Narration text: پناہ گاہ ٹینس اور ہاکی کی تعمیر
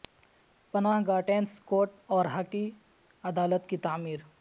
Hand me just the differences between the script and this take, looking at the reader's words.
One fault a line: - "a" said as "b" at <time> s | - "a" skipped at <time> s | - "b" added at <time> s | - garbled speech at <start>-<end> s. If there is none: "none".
- "کورٹ" added at 1.6 s
- "عدالت" added at 3.2 s